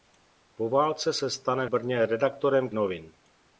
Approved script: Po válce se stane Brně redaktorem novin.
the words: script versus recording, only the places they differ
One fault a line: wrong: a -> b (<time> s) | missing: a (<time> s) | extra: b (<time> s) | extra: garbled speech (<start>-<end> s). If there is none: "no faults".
no faults